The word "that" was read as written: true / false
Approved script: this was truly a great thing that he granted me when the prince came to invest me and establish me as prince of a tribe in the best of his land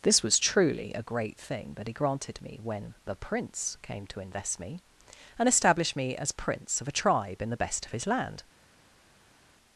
true